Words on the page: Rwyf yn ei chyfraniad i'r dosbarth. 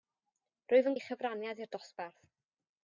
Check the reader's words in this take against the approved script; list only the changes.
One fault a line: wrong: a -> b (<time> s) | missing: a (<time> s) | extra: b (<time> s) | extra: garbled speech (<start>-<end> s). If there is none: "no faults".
no faults